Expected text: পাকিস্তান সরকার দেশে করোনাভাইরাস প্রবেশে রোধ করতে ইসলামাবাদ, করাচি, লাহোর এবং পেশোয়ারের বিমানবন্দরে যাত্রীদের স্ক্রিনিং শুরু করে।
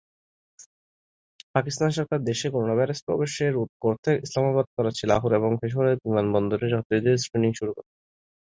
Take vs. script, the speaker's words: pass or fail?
pass